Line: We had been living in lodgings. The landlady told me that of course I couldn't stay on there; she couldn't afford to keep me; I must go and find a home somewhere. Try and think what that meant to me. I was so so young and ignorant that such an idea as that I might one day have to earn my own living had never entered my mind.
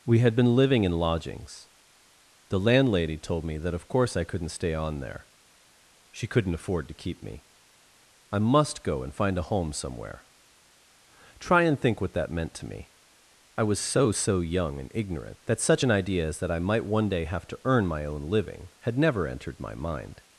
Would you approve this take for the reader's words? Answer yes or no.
yes